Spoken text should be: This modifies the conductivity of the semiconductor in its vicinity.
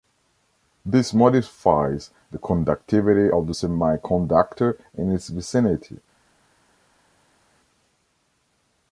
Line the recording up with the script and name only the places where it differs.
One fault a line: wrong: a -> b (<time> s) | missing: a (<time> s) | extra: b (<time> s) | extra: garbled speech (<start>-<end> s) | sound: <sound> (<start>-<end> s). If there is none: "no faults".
no faults